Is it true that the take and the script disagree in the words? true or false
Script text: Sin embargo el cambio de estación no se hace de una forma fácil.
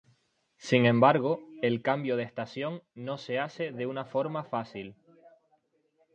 false